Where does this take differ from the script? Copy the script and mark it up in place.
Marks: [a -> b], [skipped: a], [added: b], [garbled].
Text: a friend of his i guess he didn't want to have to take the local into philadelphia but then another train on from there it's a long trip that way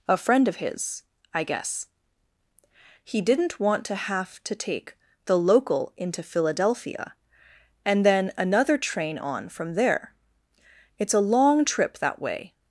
a friend of his i guess he didn't want to have to take the local into philadelphia [but -> and] then another train on from there it's a long trip that way